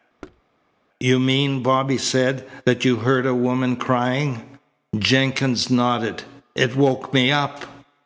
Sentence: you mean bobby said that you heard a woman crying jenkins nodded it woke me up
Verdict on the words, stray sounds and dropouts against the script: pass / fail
fail